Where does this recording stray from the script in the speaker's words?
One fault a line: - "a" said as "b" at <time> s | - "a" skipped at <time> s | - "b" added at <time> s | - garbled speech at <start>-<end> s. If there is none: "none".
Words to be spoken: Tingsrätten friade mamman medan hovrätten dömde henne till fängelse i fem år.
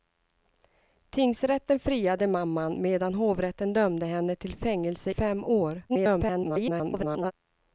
- "i" skipped at 5.1 s
- garbled speech at 5.9-7.3 s